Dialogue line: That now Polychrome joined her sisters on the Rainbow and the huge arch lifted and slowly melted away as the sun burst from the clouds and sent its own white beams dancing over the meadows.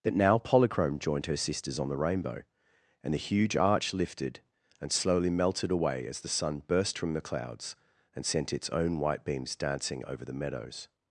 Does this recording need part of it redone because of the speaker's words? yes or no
no